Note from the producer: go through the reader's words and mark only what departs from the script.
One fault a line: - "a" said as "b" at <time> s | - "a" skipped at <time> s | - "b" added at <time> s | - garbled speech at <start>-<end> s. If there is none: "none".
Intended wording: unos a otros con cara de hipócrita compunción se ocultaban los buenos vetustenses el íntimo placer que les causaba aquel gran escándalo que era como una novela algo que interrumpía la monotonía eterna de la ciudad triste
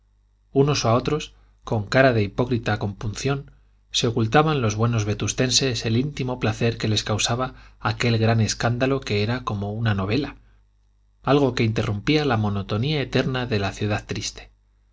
none